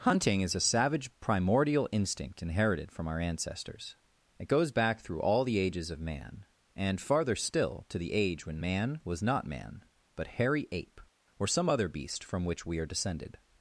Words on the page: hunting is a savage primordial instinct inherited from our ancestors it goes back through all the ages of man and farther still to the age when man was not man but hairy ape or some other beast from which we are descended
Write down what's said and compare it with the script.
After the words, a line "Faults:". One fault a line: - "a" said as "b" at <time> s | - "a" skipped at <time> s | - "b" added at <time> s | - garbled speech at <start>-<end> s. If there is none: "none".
hunting is a savage primordial instinct inherited from our ancestors it goes back through all the ages of man and farther still to the age when man was not man but hairy ape or some other beast from which we are descended
Faults:
none